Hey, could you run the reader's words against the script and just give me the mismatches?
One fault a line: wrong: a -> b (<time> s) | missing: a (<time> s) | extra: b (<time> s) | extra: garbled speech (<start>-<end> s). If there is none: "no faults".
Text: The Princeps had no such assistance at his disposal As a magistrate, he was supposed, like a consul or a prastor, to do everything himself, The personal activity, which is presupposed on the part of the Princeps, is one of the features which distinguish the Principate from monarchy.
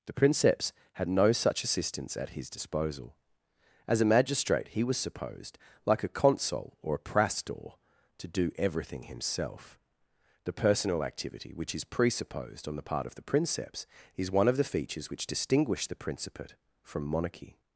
no faults